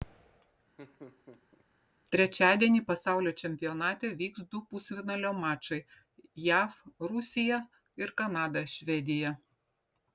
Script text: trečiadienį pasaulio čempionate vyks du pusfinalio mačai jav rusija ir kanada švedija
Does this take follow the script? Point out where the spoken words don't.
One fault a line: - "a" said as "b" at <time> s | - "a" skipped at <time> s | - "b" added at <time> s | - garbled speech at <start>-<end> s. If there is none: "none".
none